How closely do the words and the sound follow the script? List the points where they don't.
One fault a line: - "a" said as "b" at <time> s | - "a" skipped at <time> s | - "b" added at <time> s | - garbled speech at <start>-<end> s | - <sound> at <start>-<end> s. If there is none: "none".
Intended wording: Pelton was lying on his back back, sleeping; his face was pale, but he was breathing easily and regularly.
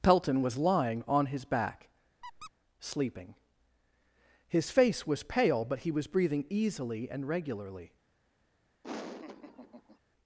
- "back" skipped at 1.9 s
- squeak at 2.2-2.5 s
- laugh at 8.8-10.0 s